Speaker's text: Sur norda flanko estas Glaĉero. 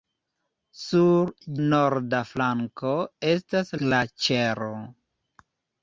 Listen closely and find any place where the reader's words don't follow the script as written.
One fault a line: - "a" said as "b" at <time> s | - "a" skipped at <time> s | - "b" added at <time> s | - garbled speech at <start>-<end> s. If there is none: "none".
none